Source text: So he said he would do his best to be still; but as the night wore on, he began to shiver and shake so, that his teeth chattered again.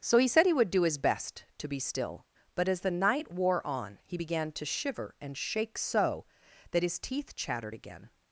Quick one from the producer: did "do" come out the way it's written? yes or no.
yes